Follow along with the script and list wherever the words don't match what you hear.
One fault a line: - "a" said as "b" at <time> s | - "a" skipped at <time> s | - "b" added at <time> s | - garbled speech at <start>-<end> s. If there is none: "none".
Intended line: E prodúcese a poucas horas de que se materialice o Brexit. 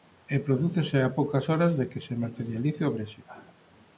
none